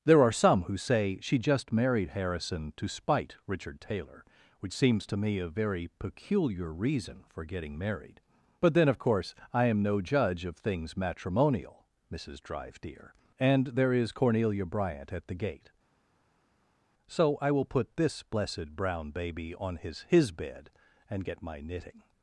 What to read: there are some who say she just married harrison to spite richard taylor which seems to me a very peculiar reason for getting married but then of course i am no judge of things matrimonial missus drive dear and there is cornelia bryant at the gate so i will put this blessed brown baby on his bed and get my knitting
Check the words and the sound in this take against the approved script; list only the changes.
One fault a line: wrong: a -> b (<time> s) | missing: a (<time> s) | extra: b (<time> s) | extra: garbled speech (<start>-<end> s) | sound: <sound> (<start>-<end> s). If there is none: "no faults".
extra: his (20.1 s)